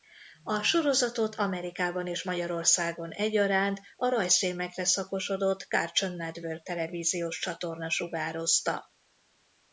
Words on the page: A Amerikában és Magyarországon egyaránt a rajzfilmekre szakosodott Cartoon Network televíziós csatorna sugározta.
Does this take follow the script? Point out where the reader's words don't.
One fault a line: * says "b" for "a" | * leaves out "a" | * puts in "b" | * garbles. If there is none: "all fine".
* puts in "sorozatot"